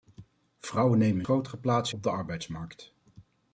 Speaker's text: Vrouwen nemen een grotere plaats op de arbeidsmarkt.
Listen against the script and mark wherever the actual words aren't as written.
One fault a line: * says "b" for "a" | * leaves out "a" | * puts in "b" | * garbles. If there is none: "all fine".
all fine